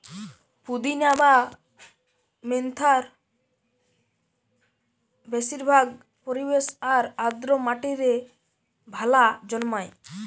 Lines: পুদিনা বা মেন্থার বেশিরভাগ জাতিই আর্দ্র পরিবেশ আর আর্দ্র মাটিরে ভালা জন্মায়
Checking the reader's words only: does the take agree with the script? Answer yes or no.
no